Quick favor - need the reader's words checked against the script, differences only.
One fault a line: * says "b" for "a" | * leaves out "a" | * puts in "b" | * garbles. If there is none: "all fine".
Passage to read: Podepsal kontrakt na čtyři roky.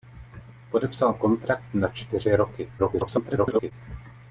* garbles